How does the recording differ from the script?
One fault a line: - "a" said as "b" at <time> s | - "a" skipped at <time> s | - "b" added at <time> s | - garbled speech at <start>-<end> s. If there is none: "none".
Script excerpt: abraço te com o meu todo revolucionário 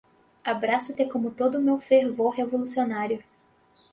- "todo" added at 1.3 s
- "todo" said as "fervor" at 1.8 s